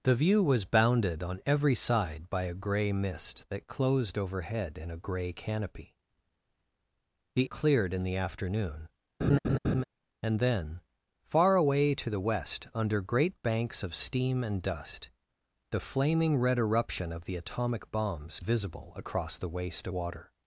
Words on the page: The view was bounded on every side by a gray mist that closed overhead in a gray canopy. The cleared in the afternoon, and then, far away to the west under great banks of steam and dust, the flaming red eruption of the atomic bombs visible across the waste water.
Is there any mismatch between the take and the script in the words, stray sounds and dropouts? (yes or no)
yes